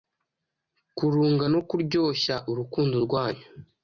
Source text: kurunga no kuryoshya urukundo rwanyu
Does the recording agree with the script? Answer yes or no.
yes